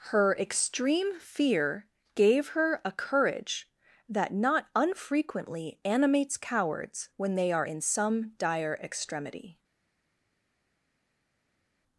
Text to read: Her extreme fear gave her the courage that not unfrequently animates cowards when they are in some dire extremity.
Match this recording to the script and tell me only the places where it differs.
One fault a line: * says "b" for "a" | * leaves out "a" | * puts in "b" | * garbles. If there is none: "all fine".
* says "a" for "the"